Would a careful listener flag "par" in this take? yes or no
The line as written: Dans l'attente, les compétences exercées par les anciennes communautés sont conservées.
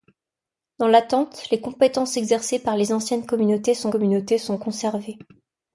no